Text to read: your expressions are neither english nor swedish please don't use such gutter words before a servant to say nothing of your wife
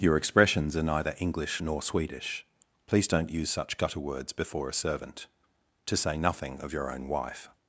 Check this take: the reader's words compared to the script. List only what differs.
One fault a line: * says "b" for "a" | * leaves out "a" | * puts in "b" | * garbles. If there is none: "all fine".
* puts in "own"